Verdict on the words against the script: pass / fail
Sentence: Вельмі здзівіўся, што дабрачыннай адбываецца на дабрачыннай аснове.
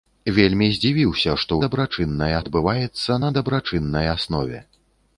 pass